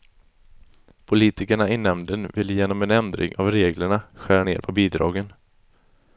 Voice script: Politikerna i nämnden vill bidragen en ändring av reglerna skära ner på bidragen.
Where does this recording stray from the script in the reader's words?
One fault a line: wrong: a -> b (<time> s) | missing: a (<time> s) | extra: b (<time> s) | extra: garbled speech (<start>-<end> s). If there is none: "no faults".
wrong: bidragen -> genom (2.5 s)